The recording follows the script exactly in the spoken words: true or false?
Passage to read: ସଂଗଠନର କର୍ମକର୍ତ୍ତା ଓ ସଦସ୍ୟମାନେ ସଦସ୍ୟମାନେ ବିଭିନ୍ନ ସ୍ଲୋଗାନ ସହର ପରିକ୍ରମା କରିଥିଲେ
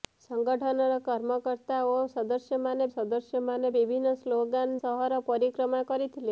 true